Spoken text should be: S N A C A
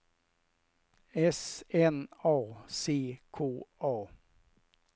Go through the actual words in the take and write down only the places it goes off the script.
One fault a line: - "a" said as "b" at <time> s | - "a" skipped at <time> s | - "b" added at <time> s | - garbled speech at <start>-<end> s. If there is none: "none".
- "K" added at 3.3 s